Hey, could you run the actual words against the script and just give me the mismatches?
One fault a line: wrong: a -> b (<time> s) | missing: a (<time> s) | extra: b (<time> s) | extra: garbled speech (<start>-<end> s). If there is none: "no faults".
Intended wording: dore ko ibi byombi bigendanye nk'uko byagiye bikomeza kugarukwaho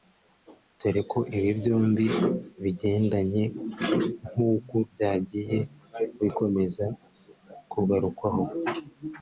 no faults